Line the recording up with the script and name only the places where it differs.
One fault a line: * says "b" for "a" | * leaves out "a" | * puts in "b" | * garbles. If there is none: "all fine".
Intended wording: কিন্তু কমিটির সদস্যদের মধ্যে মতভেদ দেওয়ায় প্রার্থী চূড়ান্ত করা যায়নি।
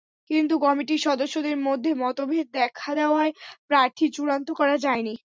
* puts in "দেখা"